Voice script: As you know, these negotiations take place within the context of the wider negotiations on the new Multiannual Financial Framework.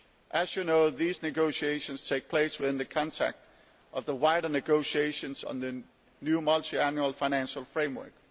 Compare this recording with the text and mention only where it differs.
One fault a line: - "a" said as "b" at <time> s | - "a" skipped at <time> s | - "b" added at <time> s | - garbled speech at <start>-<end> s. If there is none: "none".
none